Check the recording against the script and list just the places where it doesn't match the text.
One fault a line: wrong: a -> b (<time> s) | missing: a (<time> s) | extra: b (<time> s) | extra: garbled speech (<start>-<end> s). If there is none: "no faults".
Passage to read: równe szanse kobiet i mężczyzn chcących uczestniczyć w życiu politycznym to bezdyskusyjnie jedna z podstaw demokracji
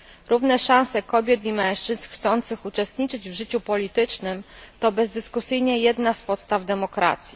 no faults